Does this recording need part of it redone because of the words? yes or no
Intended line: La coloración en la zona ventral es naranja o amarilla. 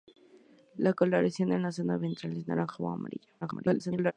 yes